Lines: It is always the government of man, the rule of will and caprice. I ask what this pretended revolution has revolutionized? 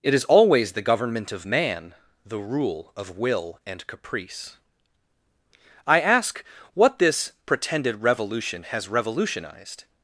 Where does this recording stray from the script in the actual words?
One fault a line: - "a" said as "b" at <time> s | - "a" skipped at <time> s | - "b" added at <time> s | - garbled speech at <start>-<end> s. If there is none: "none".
none